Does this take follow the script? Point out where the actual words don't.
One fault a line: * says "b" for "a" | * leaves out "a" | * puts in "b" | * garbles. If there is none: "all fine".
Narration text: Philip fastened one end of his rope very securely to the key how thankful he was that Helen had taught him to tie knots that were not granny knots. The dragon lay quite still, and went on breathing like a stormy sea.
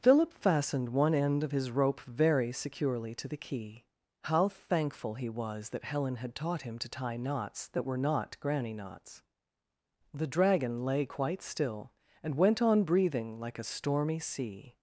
all fine